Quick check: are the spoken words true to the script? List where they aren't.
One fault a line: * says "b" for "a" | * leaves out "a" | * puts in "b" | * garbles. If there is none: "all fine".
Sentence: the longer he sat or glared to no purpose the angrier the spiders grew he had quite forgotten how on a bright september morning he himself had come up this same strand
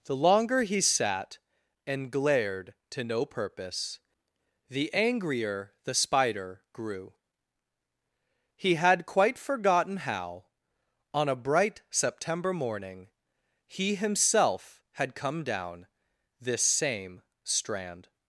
* says "and" for "or"
* says "spider" for "spiders"
* says "down" for "up"